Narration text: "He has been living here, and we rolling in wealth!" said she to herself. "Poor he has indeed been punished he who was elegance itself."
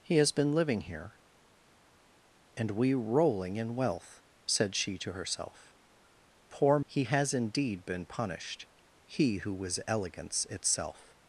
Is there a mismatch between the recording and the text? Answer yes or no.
no